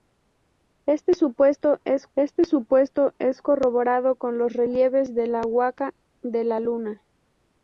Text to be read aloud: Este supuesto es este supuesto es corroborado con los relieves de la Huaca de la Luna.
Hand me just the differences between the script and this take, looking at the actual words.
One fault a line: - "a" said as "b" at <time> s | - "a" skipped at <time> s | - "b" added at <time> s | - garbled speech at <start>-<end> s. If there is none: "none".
none